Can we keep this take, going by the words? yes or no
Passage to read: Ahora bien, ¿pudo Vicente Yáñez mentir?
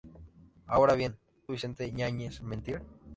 no